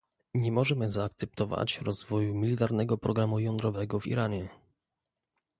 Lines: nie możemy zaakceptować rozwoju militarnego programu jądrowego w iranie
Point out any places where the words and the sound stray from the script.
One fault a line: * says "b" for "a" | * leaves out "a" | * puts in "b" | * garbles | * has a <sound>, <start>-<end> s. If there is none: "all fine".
all fine